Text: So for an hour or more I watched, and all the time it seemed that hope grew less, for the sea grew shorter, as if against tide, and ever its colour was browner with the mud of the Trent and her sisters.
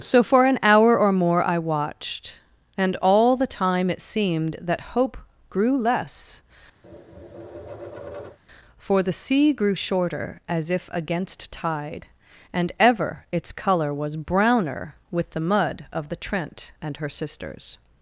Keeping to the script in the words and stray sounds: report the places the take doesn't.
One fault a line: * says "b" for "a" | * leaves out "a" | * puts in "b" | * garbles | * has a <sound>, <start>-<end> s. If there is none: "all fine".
* has a tap, 6.8-8.4 s